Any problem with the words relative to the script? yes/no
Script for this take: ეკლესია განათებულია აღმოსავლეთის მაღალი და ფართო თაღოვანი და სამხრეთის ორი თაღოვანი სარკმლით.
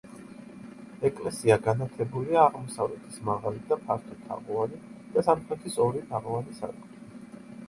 no